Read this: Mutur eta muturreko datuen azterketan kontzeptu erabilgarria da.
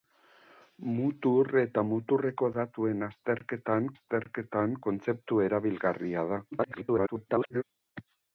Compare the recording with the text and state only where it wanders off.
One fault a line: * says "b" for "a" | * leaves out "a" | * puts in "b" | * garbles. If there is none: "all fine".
* puts in "azterketan"
* garbles